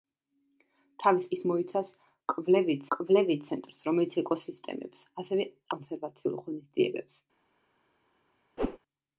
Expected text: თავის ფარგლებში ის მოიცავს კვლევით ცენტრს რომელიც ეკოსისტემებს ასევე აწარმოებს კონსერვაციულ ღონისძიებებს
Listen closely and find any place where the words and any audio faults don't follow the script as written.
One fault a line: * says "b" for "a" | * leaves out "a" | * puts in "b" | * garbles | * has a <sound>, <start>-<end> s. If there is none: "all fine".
* leaves out "ფარგლებში"
* puts in "კვლევით"
* leaves out "აწარმოებს"
* has a whoosh, 8.6-8.8 s